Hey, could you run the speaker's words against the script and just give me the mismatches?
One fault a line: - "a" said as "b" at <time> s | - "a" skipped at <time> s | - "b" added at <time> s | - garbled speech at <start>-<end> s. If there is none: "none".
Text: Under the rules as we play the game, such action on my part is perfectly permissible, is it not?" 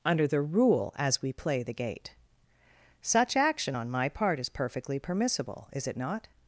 - "rules" said as "rule" at 0.4 s
- "game" said as "gate" at 1.7 s